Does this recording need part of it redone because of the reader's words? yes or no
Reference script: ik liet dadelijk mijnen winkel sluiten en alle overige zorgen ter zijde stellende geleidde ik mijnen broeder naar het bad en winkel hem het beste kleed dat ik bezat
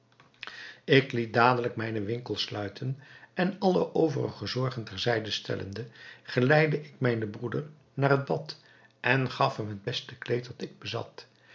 yes